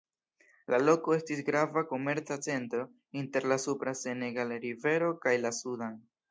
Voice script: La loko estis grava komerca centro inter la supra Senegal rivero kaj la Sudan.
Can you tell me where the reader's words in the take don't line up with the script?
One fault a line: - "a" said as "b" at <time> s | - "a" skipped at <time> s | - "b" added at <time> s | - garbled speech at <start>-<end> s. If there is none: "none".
none